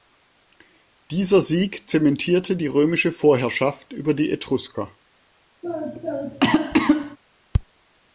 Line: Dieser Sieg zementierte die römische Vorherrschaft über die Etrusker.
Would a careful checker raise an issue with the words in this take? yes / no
no